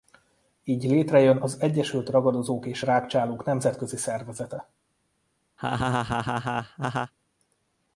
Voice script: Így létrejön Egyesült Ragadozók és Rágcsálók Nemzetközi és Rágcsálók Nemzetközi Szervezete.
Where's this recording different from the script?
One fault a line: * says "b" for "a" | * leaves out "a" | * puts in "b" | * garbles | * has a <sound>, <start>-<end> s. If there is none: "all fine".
* puts in "az"
* leaves out "és Rágcsálók Nemzetközi"
* has a laugh, 5.6-7.1 s